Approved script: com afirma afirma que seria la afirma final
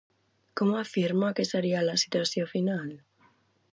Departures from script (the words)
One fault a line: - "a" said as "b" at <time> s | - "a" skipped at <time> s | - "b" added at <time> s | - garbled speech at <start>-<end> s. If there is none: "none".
- "afirma" skipped at 1.3 s
- "afirma" said as "situació" at 2.0 s